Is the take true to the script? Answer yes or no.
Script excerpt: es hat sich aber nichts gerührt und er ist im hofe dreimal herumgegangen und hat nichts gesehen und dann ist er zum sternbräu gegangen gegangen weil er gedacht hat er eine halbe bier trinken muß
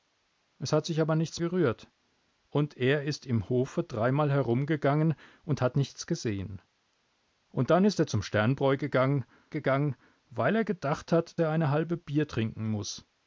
yes